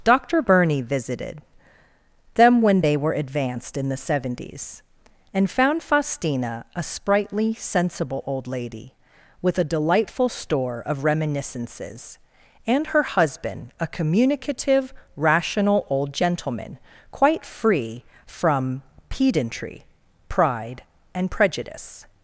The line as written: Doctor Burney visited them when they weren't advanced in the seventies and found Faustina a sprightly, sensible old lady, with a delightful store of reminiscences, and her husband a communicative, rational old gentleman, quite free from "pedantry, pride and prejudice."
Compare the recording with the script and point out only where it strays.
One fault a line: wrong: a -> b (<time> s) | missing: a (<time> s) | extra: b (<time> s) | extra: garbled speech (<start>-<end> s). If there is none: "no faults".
wrong: weren't -> were (3.0 s)